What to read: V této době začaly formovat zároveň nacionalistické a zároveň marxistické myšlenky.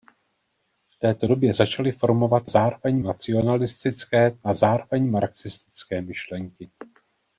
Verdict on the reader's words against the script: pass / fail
pass